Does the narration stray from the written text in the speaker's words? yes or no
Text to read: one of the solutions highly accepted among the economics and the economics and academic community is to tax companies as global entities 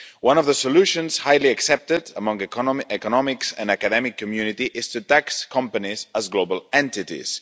yes